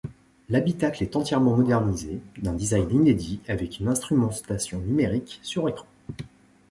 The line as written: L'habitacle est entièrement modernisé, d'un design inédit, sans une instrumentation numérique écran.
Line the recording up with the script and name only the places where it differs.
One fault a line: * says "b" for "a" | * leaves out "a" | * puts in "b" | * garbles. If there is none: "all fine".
* says "avec" for "sans"
* puts in "sur"